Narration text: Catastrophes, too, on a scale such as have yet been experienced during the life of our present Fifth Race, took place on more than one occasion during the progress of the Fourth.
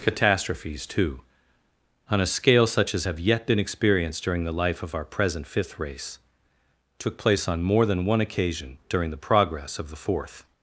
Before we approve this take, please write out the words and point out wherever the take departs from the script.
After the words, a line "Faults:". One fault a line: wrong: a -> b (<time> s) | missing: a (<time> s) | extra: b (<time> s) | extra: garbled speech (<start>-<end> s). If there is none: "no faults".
Catastrophes, too, on a scale such as have yet been experienced during the life of our present Fifth Race, took place on more than one occasion during the progress of the Fourth.
Faults:
no faults